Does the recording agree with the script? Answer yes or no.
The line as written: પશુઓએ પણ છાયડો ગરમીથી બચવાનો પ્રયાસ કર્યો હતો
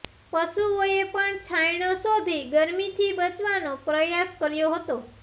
no